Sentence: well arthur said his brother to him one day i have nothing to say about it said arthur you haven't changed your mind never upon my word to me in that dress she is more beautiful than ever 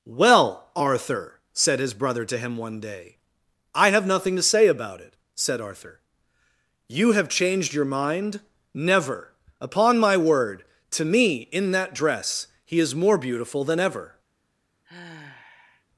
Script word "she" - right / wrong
wrong